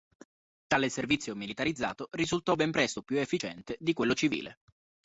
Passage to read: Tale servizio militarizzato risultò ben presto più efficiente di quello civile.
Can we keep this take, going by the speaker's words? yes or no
yes